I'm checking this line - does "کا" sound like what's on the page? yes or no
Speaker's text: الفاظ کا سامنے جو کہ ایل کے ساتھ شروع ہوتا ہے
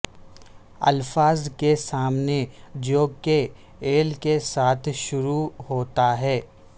no